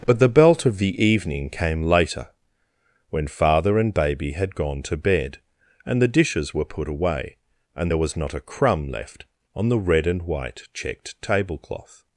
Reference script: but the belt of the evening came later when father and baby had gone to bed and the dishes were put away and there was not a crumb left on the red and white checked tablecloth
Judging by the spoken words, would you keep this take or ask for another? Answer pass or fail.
pass